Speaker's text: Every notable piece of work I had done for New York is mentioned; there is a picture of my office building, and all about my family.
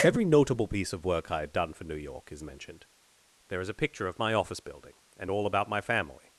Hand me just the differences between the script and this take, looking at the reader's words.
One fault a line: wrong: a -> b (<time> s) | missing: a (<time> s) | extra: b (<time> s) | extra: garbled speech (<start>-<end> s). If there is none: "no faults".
no faults